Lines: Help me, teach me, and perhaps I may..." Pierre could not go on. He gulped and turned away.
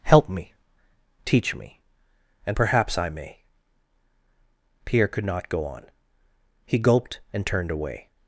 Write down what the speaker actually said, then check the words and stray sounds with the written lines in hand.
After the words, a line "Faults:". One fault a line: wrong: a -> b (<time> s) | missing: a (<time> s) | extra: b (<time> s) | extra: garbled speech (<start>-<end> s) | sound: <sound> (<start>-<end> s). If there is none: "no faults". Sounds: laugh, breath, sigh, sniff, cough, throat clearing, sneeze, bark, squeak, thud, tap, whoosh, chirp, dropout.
Help me, teach me, and perhaps I may..." Pierre could not go on. He gulped and turned away.
Faults:
no faults